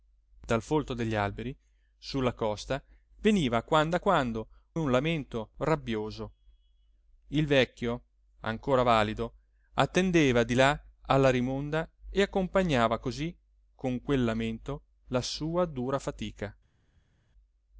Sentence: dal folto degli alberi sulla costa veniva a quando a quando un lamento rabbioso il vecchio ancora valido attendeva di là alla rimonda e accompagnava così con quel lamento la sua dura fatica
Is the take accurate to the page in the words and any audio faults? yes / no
yes